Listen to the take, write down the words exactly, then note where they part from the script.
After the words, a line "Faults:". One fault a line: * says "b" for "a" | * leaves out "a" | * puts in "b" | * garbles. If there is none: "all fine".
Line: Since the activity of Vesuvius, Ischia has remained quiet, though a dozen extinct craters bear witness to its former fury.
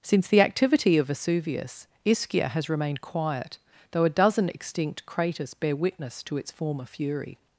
Since the activity of Vesuvius, Ischia has remained quiet, though a dozen extinct craters bear witness to its former fury.
Faults:
all fine